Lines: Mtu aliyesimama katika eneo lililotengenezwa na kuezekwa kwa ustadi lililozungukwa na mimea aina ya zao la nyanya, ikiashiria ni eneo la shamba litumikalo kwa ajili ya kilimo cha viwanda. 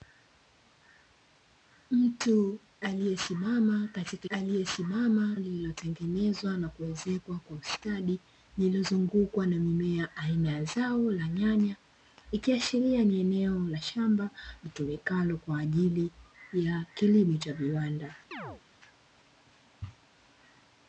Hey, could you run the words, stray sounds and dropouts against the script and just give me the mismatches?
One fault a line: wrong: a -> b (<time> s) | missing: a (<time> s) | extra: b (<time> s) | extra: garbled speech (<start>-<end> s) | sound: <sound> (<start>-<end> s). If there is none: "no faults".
wrong: eneo -> aliyesimama (4.3 s)
sound: chirp (18.3-18.6 s)